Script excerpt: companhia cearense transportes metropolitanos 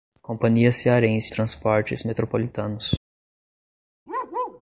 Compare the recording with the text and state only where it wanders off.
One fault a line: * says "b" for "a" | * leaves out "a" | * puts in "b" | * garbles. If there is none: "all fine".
all fine